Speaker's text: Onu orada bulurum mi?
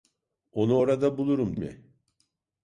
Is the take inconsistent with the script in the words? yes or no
no